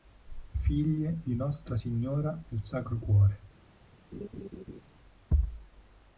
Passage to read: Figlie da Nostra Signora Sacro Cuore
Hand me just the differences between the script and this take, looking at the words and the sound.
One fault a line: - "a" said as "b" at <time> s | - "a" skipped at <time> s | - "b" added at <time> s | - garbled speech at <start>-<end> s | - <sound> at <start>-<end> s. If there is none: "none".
- "da" said as "di" at 1.2 s
- "del" added at 2.5 s
- laugh at 4.1-4.8 s